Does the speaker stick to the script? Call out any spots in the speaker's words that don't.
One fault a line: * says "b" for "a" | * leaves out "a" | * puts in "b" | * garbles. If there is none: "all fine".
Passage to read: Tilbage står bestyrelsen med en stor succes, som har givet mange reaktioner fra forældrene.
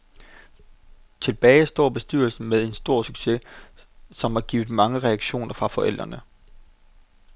all fine